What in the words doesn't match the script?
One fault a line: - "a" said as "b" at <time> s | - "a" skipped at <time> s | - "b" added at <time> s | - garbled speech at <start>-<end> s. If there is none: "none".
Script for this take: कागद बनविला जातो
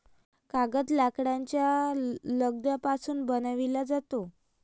- "लाकडाच्या लगद्यापासून" added at 0.9 s